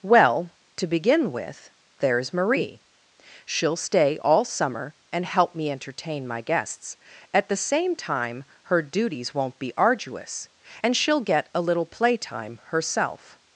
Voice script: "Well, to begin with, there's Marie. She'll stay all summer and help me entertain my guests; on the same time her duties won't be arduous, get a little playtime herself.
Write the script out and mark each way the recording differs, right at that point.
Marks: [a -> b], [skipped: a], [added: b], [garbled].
"Well, to begin with, there's Marie. She'll stay all summer and help me entertain my guests; [on -> at] the same time her duties won't be arduous, [added: and she'll] get a little playtime herself.